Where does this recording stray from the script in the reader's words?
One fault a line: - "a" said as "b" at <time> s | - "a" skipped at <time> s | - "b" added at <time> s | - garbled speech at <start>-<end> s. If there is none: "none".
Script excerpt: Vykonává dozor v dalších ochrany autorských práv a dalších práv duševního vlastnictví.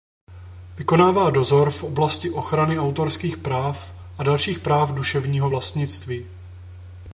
- "dalších" said as "oblasti" at 1.8 s